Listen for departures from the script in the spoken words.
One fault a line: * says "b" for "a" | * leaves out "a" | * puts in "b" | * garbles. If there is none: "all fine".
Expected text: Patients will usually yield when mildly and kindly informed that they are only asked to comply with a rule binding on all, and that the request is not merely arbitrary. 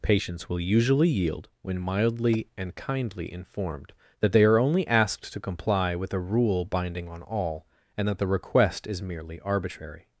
* leaves out "not"